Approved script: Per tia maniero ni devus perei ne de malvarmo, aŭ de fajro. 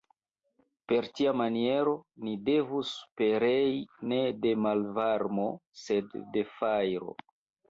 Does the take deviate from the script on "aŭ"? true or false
true